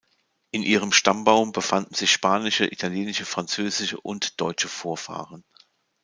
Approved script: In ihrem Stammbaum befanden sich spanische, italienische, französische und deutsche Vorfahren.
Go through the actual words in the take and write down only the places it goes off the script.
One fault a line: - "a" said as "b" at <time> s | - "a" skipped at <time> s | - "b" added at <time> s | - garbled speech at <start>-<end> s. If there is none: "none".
none